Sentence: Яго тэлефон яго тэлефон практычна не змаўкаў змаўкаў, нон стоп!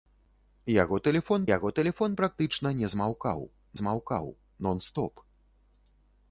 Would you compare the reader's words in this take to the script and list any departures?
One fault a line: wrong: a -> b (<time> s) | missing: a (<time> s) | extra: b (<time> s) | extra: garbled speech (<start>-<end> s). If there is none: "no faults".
no faults